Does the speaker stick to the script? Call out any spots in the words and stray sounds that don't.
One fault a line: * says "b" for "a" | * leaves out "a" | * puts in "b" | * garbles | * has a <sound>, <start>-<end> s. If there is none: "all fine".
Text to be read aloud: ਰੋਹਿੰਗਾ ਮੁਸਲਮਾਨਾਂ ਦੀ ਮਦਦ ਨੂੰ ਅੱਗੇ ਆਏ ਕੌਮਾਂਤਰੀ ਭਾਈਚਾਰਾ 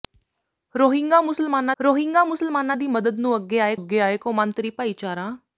* puts in "ਰੋਹਿੰਗਾ ਮੁਸਲਮਾਨਾਂ"
* puts in "ਅੱਗੇ ਆਏ"